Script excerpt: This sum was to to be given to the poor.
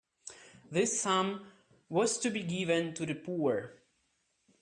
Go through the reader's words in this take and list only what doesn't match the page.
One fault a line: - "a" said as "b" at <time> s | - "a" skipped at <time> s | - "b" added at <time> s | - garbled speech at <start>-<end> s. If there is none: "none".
- "to" skipped at 2.3 s